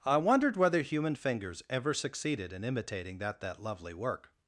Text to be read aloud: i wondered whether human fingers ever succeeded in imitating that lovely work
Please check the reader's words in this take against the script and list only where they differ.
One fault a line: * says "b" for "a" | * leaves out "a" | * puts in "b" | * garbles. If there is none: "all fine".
* puts in "that"